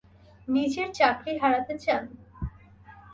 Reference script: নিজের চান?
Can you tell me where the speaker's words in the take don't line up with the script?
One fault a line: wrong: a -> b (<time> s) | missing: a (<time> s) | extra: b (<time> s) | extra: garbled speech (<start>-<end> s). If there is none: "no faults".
extra: চাকরি হারাতে (0.9 s)